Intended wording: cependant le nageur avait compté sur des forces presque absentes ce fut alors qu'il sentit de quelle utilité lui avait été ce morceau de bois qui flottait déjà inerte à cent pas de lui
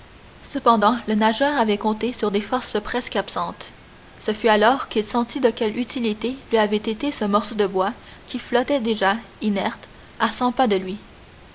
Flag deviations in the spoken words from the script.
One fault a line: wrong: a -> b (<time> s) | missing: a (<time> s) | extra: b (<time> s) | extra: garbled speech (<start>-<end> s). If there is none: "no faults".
no faults